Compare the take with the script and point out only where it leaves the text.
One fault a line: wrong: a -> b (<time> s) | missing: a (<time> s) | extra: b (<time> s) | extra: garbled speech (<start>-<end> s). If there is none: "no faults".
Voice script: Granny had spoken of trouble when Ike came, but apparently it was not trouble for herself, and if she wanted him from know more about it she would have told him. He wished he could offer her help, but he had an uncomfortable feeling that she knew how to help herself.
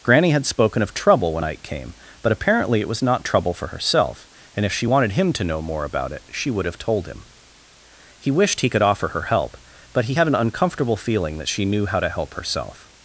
wrong: from -> to (5.3 s)